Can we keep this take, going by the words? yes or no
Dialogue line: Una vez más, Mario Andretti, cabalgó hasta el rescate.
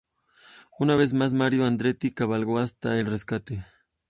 yes